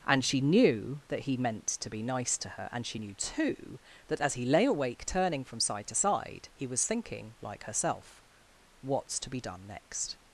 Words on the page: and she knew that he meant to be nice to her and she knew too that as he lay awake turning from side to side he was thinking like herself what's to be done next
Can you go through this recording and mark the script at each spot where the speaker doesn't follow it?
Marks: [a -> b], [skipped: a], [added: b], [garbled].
and she knew that he meant to be nice to her and she knew too that as he lay awake turning from side to side he was thinking like herself what's to be done next